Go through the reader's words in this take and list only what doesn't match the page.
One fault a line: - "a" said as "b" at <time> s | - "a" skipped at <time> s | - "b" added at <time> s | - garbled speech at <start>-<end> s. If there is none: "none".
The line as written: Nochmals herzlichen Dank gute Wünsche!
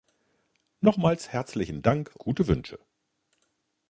none